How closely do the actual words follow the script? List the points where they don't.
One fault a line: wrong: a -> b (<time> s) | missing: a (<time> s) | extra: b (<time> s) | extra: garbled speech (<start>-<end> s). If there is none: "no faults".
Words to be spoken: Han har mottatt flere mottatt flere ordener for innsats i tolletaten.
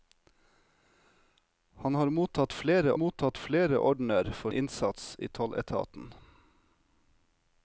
no faults